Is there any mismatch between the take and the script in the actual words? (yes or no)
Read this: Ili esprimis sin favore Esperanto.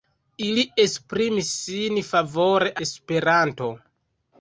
no